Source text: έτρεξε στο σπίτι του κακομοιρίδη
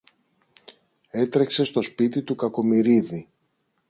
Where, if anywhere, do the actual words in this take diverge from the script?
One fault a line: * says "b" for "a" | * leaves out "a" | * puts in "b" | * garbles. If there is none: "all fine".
all fine